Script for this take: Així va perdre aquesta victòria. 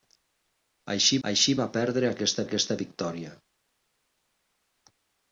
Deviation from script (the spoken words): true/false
true